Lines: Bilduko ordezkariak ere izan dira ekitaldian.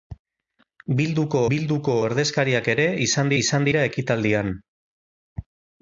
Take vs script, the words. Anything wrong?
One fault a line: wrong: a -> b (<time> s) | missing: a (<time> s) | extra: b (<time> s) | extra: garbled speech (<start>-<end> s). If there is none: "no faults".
extra: bilduko (1.5 s)
extra: izan (3.4 s)